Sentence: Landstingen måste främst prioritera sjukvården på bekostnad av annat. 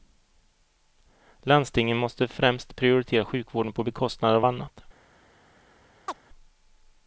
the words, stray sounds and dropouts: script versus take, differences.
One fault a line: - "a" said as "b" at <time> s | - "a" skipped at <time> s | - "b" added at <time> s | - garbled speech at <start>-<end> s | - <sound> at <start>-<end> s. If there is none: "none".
- chirp at 6.1-6.2 s